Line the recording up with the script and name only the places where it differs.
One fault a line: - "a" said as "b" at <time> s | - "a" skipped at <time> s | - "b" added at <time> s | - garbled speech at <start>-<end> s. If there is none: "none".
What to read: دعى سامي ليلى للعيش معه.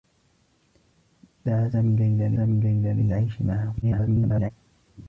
- "سامي ليلى" added at 2.3 s
- garbled speech at 3.8-4.5 s